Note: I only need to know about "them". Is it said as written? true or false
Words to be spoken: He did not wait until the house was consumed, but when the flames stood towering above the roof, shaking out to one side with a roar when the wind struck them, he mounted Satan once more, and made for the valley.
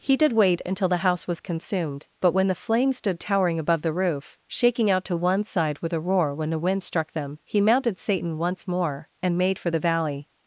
true